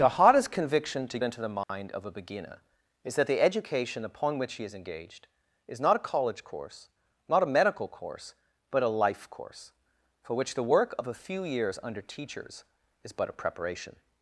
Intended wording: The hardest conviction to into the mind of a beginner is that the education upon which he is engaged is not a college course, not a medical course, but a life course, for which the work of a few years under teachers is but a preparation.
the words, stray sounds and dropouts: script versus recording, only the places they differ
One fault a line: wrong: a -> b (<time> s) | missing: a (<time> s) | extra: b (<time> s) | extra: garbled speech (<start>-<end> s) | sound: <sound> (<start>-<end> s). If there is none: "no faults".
sound: dropout (1.6-1.7 s)